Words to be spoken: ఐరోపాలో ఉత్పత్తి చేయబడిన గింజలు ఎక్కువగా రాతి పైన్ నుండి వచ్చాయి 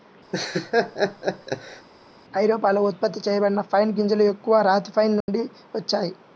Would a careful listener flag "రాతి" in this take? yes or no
no